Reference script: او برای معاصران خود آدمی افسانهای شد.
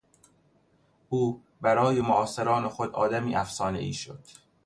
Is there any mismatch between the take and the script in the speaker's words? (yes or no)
no